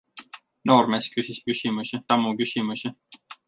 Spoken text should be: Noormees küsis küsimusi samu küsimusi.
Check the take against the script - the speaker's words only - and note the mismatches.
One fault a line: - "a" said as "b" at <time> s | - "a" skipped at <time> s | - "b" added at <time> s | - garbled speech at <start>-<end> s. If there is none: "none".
none